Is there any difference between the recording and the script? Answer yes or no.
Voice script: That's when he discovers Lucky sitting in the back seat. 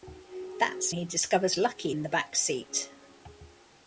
yes